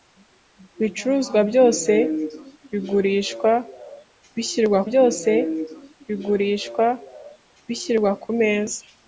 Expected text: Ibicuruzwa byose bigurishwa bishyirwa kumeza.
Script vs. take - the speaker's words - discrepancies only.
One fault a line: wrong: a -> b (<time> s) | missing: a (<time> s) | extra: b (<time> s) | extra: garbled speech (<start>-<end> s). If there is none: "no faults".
extra: byose bigurishwa bishyirwa (4.9 s)